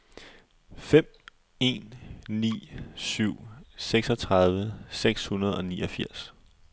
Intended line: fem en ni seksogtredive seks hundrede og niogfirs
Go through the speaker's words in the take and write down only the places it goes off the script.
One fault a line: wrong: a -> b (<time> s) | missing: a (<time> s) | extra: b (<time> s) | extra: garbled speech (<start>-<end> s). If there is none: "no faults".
extra: syv (3.0 s)